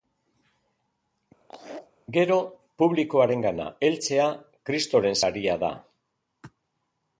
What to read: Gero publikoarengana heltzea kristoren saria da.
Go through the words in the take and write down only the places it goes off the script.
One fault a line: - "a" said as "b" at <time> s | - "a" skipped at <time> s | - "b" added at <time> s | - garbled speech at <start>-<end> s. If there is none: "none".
none